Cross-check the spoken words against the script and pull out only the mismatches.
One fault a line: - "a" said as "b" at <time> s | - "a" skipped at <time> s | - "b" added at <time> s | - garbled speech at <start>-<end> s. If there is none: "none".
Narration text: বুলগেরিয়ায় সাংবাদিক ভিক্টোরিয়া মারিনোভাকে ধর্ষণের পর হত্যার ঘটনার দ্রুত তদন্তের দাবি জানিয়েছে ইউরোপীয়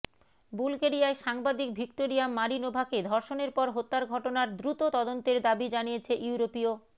none